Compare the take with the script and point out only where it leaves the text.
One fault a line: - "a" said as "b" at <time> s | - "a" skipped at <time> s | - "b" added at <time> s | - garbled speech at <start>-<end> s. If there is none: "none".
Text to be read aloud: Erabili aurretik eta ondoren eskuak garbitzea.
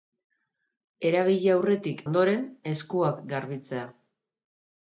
- "eta" skipped at 2.0 s